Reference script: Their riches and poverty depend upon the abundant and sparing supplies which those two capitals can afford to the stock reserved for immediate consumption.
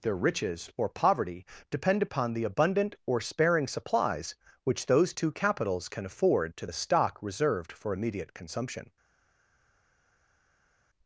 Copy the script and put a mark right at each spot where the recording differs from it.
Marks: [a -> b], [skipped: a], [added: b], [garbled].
Their riches [and -> or] poverty depend upon the abundant [and -> or] sparing supplies which those two capitals can afford to the stock reserved for immediate consumption.